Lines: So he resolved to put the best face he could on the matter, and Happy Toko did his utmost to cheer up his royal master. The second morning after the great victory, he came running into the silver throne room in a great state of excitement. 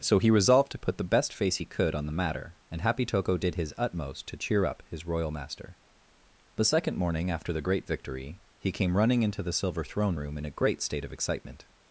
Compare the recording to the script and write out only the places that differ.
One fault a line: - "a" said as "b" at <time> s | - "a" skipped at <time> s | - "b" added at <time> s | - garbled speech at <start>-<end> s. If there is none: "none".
none